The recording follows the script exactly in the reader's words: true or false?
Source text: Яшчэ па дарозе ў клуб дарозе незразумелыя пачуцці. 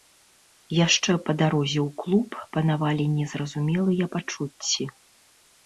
false